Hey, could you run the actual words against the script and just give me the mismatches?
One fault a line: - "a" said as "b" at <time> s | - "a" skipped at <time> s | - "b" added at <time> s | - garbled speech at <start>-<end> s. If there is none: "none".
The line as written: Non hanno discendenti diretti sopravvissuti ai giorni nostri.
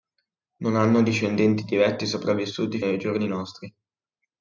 none